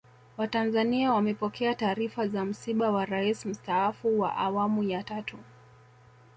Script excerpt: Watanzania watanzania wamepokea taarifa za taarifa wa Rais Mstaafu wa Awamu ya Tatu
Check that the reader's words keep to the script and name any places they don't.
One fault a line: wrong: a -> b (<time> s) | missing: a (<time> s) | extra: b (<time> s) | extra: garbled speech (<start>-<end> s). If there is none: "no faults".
missing: watanzania (1.1 s)
wrong: taarifa -> msiba (2.5 s)